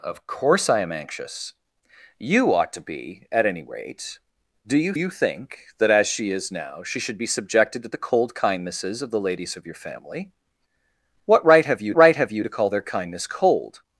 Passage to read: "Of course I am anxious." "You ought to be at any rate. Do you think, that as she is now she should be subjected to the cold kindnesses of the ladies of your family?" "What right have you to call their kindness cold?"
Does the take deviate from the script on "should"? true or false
false